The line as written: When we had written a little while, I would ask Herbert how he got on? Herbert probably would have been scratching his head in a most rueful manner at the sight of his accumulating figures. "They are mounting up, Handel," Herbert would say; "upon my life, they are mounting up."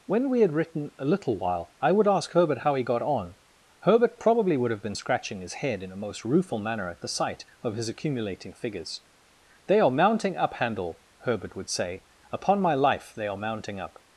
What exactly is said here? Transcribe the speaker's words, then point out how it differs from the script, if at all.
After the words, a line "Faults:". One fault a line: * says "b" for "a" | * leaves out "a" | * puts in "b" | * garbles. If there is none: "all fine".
When we had written a little while, I would ask Herbert how he got on? Herbert probably would have been scratching his head in a most rueful manner at the sight of his accumulating figures. "They are mounting up, Handel," Herbert would say; "upon my life, they are mounting up."
Faults:
all fine